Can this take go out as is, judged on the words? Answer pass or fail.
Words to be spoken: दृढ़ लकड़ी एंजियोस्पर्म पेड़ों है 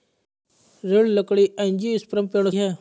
pass